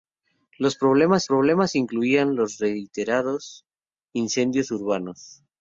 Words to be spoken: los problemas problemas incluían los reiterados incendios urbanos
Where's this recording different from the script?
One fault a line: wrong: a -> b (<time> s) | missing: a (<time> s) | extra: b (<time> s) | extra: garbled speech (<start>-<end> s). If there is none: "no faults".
no faults